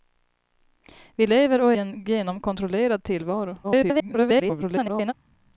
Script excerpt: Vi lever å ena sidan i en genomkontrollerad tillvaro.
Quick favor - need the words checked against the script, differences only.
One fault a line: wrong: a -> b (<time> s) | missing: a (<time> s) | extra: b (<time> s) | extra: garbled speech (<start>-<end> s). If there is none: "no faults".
missing: ena sidan i (1.7 s)
extra: garbled speech (3.6-5.1 s)